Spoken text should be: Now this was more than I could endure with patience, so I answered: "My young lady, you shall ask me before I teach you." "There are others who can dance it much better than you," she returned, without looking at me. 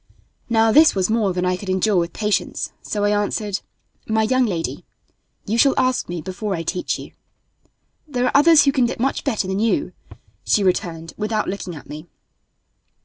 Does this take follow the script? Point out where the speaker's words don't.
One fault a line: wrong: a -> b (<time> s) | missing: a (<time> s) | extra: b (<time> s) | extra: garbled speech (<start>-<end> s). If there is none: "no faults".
missing: dance (8.9 s)